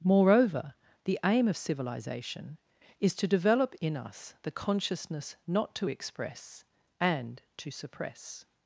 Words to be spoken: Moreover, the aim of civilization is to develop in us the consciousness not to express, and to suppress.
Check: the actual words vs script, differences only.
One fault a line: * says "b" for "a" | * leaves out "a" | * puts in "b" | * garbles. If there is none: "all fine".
all fine